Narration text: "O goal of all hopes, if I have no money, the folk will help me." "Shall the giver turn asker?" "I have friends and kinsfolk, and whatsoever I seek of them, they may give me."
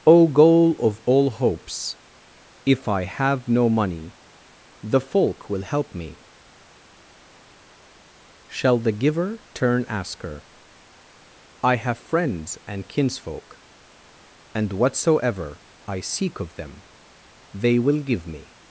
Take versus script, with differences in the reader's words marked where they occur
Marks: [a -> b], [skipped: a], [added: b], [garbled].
"O goal of all hopes, if I have no money, the folk will help me." "Shall the giver turn asker?" "I have friends and kinsfolk, and whatsoever I seek of them, they [may -> will] give me."